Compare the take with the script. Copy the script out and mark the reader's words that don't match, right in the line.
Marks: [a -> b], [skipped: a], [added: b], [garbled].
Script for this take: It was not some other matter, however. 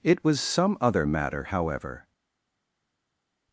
It was [skipped: not] some other matter, however.